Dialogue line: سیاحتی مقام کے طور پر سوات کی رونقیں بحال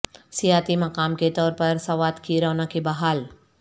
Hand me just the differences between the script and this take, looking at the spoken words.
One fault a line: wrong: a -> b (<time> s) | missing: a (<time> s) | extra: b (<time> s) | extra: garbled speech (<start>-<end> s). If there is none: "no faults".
no faults